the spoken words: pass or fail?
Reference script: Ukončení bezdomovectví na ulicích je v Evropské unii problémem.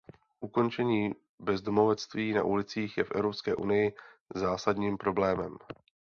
fail